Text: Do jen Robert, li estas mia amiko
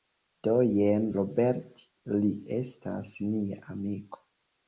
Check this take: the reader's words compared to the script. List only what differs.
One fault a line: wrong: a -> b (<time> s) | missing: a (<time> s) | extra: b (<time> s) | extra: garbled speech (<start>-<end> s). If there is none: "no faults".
no faults